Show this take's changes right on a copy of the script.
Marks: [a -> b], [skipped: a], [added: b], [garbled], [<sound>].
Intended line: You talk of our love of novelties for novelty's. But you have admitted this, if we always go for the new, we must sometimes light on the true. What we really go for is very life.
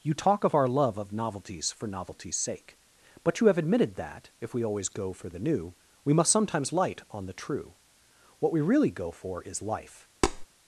You talk of our love of novelties for novelty's. [added: sake] But you have admitted [this, -> that] if we always go for the new, we must sometimes light on the true. What we really go for is [skipped: very] life. [tap]